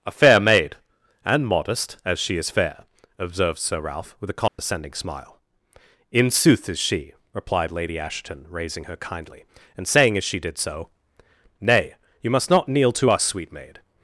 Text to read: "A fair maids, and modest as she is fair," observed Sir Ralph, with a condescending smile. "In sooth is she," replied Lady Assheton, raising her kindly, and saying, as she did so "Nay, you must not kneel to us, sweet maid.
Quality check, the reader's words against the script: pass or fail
fail